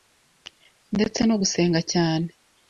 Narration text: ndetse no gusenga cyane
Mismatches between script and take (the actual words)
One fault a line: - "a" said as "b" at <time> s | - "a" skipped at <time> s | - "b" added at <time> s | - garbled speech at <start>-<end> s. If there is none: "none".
none